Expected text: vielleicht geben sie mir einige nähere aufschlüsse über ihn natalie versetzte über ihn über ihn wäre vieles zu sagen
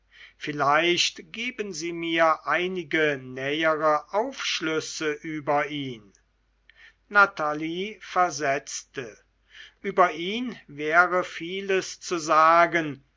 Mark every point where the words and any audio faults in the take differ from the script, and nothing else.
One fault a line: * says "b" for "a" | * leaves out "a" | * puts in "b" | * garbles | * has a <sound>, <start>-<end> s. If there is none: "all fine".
* leaves out "über ihn"